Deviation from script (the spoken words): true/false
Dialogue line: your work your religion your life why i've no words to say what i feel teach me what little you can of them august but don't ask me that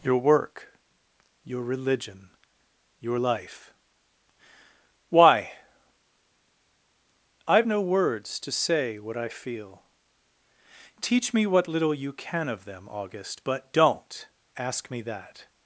false